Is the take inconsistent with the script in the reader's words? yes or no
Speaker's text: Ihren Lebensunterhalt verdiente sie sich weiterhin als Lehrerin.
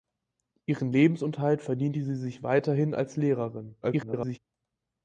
yes